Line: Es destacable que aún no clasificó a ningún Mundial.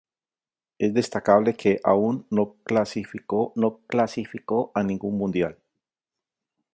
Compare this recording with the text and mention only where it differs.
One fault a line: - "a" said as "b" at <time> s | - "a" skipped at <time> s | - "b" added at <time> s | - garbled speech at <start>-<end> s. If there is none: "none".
- "no clasificó" added at 3.5 s